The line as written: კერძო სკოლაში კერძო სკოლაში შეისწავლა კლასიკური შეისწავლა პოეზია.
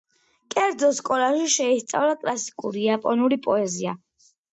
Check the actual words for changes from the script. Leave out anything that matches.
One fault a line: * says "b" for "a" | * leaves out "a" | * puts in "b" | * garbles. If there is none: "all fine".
* leaves out "კერძო სკოლაში"
* says "იაპონური" for "შეისწავლა"